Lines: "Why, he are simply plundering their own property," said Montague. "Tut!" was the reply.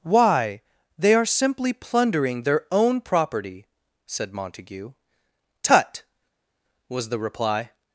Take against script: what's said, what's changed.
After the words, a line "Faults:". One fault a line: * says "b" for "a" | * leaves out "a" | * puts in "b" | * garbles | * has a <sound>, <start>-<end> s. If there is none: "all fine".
"Why, they are simply plundering their own property," said Montague. "Tut!" was the reply.
Faults:
* says "they" for "he"